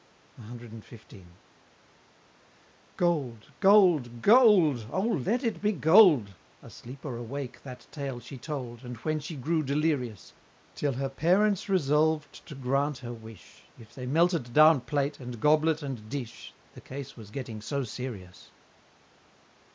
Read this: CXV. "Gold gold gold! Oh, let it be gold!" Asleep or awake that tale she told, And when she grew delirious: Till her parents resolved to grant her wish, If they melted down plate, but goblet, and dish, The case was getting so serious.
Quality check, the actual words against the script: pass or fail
fail